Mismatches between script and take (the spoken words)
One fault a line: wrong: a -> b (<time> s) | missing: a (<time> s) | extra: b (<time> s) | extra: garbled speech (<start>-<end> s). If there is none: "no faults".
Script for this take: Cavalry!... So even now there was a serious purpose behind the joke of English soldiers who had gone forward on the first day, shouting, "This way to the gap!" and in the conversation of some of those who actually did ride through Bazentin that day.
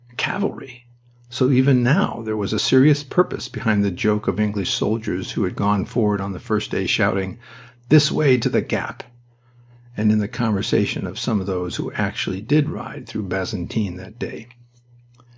no faults